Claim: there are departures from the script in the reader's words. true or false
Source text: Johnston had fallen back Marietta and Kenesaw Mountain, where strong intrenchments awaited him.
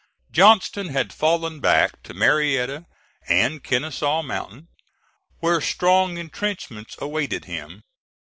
true